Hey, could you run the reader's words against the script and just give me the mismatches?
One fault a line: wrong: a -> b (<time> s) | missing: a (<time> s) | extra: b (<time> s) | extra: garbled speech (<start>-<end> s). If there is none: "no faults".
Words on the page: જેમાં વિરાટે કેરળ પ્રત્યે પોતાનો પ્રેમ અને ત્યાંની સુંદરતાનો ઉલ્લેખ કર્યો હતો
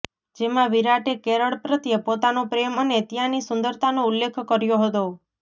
no faults